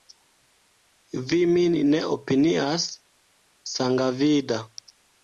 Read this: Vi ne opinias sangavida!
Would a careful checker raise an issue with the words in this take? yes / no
yes